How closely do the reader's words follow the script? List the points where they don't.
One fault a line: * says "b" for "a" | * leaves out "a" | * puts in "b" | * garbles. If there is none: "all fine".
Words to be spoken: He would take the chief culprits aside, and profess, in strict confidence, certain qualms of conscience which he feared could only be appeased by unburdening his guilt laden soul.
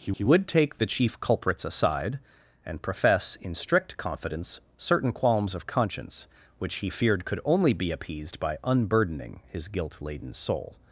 * puts in "he"